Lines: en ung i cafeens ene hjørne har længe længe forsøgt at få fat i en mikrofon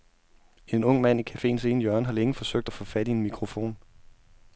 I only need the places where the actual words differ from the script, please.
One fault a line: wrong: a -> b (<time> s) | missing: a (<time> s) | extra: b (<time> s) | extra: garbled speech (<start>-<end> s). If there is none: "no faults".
extra: mand (1.0 s)
missing: længe (2.3 s)